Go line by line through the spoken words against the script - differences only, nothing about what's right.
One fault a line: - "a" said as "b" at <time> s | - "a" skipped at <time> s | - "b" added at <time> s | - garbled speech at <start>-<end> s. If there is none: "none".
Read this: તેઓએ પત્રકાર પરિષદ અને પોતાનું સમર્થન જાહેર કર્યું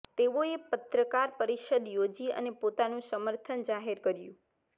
- "યોજી" added at 1.9 s